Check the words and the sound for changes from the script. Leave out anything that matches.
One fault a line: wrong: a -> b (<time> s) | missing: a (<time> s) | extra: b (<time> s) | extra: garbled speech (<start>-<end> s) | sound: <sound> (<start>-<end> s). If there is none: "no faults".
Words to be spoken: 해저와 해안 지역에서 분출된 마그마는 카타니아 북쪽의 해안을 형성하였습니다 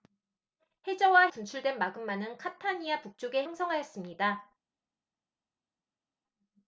missing: 해안 지역에서 (1.3 s)
missing: 해안을 (3.4 s)